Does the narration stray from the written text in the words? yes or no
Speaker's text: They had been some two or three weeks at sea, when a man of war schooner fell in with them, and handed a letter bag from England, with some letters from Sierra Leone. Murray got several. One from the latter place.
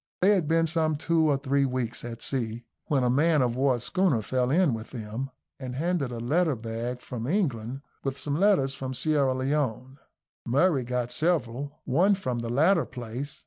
no